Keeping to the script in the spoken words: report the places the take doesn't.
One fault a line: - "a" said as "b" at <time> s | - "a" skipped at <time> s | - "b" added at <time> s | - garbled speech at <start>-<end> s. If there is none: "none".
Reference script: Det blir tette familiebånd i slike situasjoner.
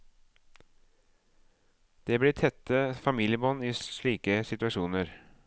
none